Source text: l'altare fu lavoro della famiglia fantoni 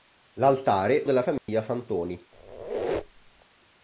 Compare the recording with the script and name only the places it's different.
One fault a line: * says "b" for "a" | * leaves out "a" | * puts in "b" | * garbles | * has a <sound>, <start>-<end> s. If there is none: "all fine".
* leaves out "fu lavoro"
* has a dropout, 1.4-1.5 s
* has a squeak, 2.3-3.5 s